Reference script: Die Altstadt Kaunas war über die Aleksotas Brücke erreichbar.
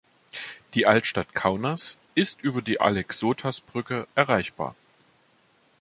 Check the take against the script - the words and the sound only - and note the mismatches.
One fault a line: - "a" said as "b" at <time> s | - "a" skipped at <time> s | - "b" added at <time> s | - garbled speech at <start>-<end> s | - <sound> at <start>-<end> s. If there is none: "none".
- "war" said as "ist" at 2.2 s